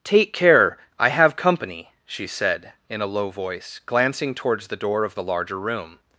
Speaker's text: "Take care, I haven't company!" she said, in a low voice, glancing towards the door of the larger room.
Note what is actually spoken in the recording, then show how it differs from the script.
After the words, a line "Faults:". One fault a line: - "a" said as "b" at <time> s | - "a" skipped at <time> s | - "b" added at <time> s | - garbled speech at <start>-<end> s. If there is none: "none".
"Take care, I have company!" she said, in a low voice, glancing towards the door of the larger room.
Faults:
- "haven't" said as "have" at 1.1 s